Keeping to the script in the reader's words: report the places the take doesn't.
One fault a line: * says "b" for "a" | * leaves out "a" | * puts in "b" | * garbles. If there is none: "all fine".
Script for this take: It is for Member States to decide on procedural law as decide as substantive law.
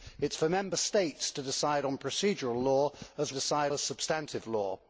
all fine